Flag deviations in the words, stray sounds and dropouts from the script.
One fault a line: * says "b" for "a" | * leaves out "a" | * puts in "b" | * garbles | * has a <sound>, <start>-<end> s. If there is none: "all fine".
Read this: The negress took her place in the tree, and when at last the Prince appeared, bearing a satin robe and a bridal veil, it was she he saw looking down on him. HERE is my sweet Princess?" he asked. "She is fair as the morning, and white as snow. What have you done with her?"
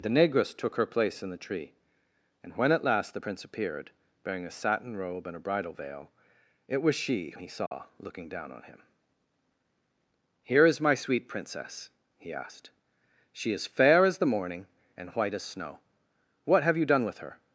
* has a dropout, 7.7-7.7 s